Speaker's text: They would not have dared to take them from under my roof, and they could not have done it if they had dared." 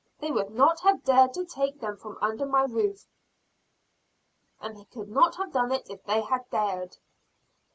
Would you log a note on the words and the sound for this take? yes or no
no